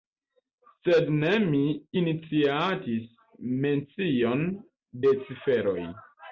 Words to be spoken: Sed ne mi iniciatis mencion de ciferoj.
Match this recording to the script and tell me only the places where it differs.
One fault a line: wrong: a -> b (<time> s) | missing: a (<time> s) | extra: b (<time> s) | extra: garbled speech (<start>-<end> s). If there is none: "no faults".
no faults